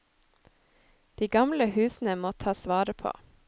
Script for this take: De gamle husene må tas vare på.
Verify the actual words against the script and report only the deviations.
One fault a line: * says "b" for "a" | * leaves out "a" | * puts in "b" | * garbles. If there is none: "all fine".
all fine